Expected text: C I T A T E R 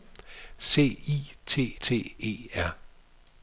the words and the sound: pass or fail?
fail